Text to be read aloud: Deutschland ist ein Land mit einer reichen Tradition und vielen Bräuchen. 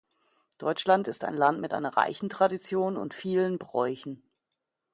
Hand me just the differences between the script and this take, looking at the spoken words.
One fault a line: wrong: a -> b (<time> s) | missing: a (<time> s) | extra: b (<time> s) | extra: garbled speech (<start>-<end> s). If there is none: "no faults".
no faults